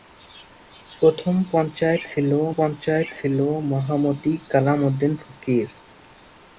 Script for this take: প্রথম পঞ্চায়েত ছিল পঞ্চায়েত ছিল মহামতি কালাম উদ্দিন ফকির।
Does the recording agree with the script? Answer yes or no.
yes